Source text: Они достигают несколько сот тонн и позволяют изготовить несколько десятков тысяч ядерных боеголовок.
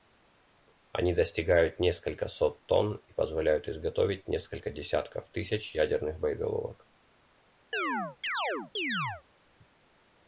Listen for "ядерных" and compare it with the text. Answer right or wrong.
right